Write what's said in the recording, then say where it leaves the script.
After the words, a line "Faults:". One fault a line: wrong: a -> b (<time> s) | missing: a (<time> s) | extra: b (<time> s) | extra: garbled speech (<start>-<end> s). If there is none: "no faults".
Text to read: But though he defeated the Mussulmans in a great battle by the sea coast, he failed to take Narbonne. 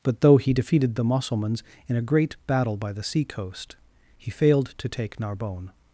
But though he defeated the Mussulmans in a great battle by the sea coast, he failed to take Narbonne.
Faults:
no faults